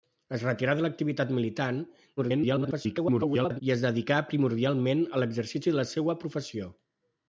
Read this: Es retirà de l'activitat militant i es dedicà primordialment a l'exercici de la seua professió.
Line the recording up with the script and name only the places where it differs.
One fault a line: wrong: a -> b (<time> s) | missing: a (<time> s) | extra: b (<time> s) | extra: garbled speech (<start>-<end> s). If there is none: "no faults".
extra: garbled speech (2.2-3.6 s)